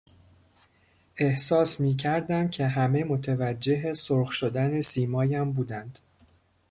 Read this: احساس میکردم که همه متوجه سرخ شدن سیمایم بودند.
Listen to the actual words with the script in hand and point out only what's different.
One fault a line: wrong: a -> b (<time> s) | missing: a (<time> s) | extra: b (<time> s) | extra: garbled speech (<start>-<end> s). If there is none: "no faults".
no faults